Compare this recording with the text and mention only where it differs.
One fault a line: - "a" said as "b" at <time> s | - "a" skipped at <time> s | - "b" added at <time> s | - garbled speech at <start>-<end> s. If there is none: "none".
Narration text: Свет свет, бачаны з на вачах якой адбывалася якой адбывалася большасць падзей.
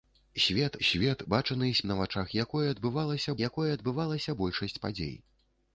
none